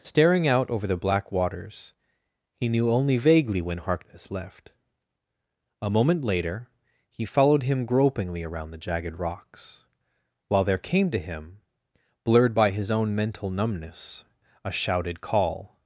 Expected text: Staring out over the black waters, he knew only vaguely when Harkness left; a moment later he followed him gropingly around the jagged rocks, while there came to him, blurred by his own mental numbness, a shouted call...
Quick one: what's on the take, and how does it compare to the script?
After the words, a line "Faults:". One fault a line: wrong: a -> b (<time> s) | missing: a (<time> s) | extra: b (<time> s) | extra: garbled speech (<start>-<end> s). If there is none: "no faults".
Staring out over the black waters, he knew only vaguely when Harkness left; a moment later he followed him gropingly around the jagged rocks, while there came to him, blurred by his own mental numbness, a shouted call...
Faults:
no faults